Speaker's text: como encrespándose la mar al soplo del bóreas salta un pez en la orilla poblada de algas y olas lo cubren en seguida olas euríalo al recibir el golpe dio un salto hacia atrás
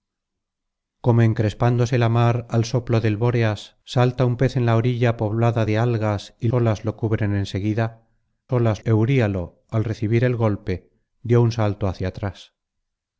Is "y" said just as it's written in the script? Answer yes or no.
yes